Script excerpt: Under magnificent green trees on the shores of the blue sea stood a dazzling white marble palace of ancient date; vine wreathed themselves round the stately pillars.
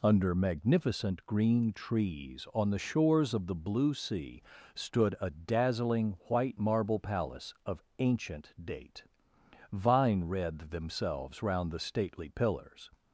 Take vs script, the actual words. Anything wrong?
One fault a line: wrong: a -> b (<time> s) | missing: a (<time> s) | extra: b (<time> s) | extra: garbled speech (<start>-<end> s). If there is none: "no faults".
no faults